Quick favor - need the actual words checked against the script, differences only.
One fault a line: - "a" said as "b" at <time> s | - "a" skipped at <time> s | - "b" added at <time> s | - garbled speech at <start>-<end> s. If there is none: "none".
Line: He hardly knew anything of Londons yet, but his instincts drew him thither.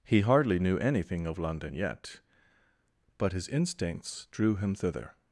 - "Londons" said as "London" at 1.4 s